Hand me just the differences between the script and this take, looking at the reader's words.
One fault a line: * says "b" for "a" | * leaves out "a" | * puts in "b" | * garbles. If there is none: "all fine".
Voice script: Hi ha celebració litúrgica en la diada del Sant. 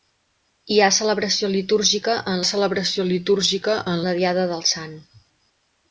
* puts in "celebració litúrgica en"